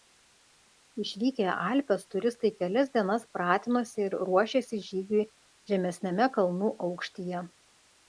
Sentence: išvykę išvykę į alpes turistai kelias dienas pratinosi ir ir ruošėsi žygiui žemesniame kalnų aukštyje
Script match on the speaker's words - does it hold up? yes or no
no